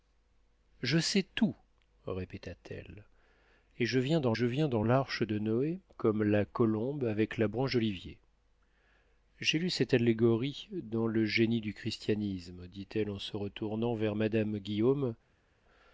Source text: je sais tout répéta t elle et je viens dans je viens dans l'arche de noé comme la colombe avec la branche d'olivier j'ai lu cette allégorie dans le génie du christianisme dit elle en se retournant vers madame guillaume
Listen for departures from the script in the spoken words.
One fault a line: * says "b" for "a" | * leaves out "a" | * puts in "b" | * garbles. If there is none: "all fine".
all fine